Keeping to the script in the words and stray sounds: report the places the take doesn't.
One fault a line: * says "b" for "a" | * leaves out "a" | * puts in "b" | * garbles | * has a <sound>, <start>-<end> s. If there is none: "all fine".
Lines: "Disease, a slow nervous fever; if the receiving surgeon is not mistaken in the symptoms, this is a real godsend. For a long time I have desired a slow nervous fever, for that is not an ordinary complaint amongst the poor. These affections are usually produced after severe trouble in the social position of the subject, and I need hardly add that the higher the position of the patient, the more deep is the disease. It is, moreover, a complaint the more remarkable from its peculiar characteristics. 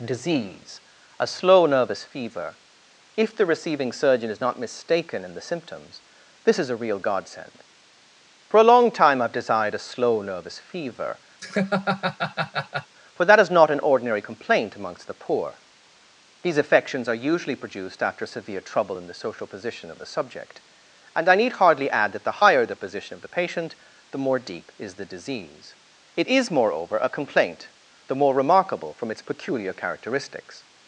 * has a laugh, 11.4-12.9 s